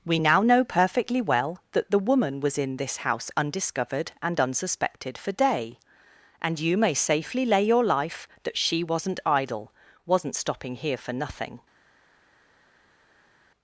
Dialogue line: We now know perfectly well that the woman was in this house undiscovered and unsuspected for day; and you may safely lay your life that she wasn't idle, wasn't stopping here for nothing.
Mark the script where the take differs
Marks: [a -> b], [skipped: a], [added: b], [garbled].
We now know perfectly well that the woman was in this house undiscovered and unsuspected for day; and you may safely lay your life that she wasn't idle, wasn't stopping here for nothing.